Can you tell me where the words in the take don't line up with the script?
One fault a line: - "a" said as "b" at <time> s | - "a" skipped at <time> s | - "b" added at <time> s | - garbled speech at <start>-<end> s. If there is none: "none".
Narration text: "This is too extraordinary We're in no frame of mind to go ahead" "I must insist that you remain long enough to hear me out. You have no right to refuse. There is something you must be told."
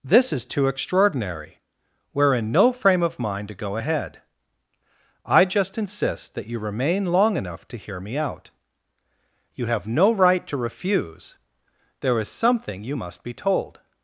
- "must" said as "just" at 5.4 s